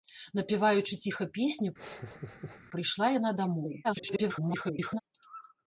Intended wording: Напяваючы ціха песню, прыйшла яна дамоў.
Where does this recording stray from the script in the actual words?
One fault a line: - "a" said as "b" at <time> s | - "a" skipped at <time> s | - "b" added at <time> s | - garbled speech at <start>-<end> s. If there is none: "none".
- garbled speech at 3.8-5.0 s